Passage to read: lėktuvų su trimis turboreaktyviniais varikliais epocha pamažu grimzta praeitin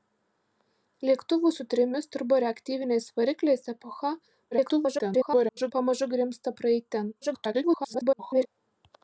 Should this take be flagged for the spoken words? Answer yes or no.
yes